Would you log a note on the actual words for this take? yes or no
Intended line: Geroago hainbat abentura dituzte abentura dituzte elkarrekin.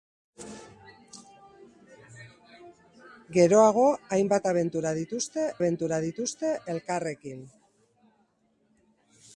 no